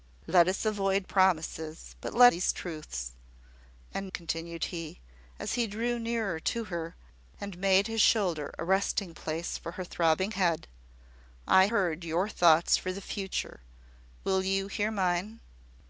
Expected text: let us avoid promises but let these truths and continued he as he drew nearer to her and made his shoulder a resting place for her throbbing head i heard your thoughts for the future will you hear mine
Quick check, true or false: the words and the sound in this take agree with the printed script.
true